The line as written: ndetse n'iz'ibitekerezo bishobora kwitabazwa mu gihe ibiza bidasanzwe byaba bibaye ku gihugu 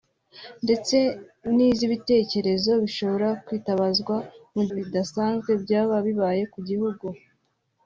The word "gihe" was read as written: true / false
false